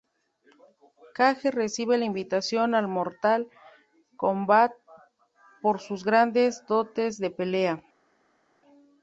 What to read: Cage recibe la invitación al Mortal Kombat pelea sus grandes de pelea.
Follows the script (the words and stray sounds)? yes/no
no